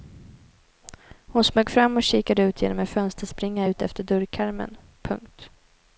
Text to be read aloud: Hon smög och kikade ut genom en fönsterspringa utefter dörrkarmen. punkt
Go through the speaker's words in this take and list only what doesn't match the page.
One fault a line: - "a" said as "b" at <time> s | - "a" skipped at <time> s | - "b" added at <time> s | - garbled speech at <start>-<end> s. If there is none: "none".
- "fram" added at 1.7 s